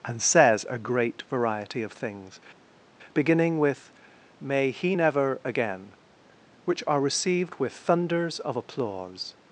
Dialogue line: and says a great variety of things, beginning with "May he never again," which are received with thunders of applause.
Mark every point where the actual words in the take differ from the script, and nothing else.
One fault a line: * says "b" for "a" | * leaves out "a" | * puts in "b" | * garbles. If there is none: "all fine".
all fine